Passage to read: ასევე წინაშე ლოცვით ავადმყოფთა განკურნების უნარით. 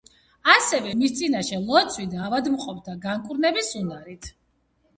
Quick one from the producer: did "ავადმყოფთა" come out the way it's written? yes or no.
yes